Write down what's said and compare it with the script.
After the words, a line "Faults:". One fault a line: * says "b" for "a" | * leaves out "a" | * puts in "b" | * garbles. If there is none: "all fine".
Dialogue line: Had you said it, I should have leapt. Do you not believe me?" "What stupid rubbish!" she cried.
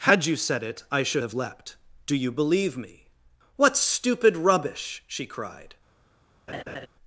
Had you said it, I should have leapt. Do you believe me?" "What stupid rubbish!" she cried.
Faults:
* leaves out "not"